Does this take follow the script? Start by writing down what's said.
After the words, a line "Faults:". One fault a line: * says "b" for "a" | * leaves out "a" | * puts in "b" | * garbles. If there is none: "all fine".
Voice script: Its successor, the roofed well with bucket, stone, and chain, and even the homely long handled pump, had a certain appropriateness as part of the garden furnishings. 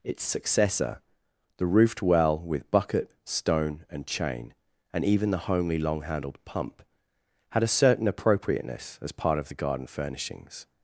Its successor, the roofed well with bucket, stone, and chain, and even the homely long handled pump, had a certain appropriateness as part of the garden furnishings.
Faults:
all fine